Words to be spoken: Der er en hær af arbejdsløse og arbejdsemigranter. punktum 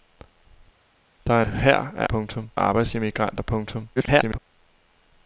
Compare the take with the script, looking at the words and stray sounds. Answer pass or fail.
fail